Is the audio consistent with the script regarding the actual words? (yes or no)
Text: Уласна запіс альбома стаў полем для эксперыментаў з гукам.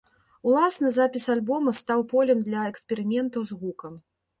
yes